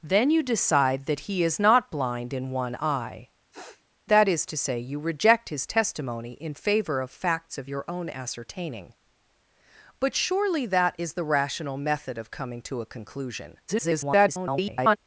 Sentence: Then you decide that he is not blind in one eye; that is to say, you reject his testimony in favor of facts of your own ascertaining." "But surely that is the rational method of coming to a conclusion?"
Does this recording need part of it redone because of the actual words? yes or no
yes